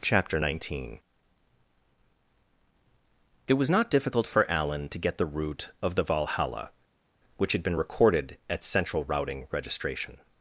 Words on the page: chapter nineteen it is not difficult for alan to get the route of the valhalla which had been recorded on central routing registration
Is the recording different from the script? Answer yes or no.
yes